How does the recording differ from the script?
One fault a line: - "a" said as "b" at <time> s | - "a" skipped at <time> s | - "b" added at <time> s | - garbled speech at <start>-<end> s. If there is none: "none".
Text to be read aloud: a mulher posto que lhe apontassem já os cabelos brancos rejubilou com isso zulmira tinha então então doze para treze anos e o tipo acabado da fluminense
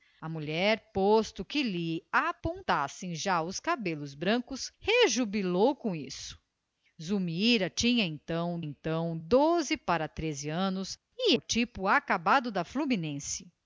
none